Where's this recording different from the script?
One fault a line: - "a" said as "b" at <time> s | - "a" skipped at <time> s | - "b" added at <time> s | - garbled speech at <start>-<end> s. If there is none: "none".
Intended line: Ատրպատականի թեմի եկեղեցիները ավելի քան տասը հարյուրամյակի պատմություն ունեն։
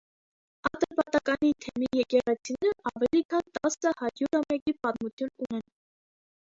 none